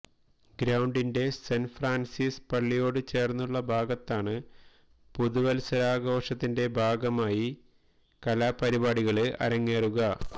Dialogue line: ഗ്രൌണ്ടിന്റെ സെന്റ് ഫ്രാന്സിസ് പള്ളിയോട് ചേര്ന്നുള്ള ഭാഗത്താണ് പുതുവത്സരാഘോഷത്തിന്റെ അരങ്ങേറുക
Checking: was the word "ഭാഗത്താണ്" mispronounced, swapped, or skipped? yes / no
no